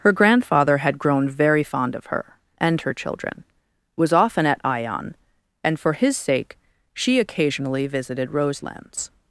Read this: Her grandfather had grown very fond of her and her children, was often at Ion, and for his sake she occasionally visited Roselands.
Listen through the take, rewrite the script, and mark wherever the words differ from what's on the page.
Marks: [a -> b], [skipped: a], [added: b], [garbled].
Her grandfather had grown very fond of her and her children, was often at Ion, and for his sake she occasionally visited Roselands.